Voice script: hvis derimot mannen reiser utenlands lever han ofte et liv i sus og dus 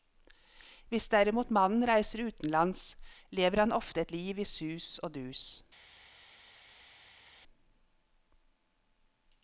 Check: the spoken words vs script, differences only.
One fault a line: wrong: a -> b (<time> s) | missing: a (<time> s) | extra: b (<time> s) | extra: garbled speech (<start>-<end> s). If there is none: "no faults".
no faults